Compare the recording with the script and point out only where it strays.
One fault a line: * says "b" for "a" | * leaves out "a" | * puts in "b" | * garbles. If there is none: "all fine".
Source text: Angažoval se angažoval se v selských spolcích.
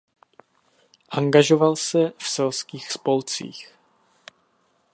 * leaves out "angažoval se"